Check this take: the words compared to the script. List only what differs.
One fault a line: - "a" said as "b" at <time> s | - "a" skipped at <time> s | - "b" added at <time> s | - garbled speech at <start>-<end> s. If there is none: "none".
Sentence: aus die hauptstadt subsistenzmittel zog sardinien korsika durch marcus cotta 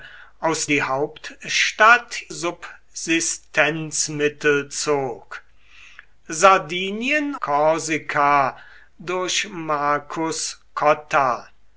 none